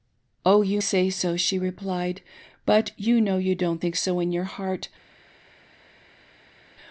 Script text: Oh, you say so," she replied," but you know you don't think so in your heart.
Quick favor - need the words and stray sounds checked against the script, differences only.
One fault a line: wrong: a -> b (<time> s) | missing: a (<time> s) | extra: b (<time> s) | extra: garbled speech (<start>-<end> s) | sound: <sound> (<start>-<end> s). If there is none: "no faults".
no faults